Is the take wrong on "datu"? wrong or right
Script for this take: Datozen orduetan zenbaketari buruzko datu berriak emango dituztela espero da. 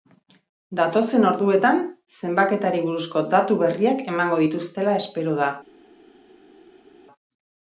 right